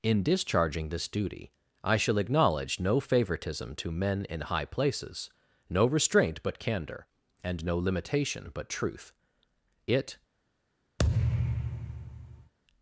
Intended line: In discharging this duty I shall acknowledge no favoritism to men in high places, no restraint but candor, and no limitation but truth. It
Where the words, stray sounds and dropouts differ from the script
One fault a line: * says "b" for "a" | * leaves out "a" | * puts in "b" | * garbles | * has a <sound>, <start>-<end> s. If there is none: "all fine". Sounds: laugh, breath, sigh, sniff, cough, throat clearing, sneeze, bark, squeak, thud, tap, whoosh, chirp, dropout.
* has a thud, 11.0-12.5 s